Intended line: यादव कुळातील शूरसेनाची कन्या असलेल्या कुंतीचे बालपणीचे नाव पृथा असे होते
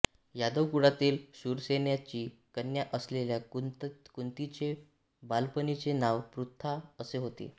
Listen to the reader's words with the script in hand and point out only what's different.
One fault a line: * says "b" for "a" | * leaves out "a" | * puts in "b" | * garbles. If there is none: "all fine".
all fine